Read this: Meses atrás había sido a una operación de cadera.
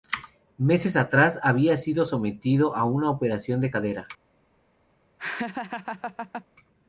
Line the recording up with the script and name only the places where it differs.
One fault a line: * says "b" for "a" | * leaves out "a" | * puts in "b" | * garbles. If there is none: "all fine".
* puts in "sometido"